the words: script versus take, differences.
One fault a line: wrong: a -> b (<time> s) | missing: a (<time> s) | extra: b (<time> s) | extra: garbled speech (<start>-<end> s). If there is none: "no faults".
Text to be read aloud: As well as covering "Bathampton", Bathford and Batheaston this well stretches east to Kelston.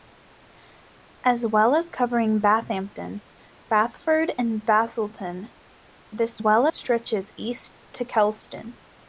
no faults